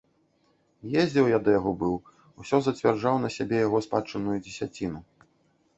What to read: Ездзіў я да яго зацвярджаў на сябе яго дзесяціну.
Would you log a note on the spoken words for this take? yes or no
yes